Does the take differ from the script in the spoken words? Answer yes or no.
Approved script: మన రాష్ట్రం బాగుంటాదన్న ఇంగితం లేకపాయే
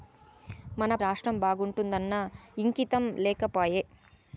no